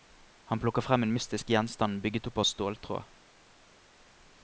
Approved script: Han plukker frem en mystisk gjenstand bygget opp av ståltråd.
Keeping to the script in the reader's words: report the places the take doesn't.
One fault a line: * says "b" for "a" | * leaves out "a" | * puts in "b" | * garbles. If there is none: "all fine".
all fine